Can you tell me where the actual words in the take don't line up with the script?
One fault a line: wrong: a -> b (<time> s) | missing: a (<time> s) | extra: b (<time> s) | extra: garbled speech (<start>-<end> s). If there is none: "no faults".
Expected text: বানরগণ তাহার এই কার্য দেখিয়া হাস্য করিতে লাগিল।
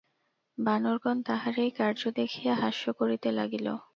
no faults